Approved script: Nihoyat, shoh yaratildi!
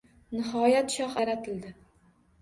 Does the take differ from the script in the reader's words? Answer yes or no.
no